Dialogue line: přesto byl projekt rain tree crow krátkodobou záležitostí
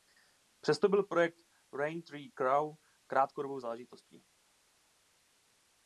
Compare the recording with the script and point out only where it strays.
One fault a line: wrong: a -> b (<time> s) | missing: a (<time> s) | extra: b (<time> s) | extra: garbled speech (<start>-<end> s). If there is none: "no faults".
no faults